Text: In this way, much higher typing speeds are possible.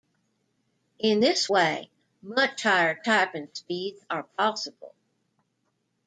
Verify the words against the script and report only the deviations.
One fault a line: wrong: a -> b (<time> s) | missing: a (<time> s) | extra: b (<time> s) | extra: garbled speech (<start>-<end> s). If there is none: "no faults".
no faults